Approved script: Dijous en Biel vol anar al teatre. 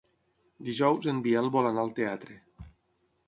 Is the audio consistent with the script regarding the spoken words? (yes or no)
yes